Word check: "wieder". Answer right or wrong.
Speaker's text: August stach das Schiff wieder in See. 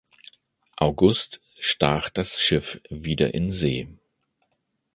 right